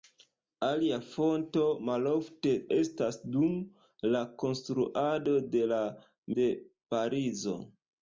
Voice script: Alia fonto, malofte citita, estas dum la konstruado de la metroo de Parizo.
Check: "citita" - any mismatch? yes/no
yes